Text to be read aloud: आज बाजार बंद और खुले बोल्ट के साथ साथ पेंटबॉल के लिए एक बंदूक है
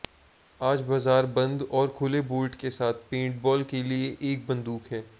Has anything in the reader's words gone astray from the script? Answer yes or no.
yes